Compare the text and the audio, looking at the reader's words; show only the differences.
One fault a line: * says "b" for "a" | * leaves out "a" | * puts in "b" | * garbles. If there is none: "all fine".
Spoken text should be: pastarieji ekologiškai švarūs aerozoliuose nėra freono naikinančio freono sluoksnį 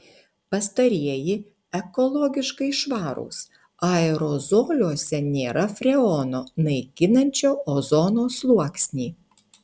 * says "ozono" for "freono"